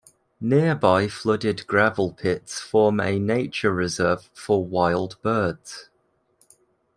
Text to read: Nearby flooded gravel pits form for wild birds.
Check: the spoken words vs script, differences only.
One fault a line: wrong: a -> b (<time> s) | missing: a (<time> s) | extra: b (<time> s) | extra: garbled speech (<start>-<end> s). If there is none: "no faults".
extra: a nature reserve (3.0 s)